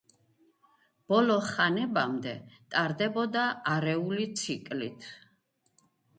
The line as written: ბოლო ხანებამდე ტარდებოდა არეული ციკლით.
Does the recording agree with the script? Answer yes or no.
yes